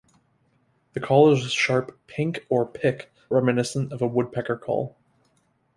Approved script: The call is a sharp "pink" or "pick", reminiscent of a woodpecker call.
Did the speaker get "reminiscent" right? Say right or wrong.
right